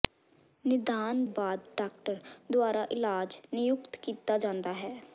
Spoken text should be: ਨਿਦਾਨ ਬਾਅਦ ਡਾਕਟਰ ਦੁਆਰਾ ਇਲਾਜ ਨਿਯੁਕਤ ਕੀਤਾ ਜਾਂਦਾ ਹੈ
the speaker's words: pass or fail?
pass